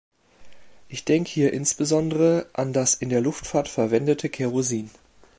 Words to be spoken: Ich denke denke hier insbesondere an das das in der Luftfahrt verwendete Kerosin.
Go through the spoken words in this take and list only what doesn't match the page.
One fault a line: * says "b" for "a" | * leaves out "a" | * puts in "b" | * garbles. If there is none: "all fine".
* leaves out "denke"
* leaves out "das"